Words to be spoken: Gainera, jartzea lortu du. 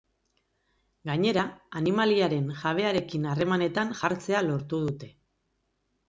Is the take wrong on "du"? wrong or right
wrong